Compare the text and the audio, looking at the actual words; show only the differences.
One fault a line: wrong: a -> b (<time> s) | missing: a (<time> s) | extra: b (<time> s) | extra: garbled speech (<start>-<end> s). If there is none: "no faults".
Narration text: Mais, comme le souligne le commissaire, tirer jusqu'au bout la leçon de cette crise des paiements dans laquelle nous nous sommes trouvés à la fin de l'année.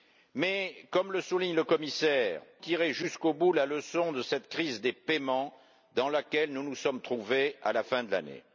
no faults